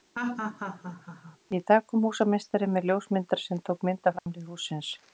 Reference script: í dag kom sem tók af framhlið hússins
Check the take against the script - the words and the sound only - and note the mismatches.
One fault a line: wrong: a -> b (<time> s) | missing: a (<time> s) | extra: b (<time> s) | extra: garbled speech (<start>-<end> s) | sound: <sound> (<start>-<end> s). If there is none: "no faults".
sound: laugh (0.1-1.4 s)
extra: húsameistari með ljósmyndara (2.0 s)
extra: mynd (3.9 s)
sound: dropout (4.2-4.3 s)